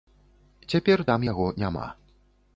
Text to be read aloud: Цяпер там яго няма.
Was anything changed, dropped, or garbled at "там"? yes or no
no